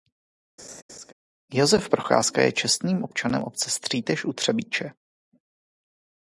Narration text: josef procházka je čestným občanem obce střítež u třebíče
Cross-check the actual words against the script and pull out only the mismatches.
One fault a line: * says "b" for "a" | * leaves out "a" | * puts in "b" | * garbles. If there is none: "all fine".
all fine